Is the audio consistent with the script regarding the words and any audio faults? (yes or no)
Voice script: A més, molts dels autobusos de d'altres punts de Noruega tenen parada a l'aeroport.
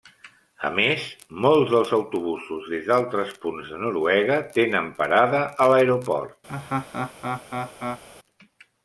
no